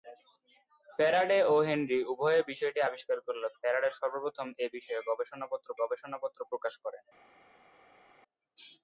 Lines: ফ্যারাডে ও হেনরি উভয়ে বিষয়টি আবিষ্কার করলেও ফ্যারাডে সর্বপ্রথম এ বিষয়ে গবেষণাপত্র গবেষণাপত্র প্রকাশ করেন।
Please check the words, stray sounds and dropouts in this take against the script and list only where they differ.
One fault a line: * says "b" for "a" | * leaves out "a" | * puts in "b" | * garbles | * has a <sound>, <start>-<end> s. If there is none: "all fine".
all fine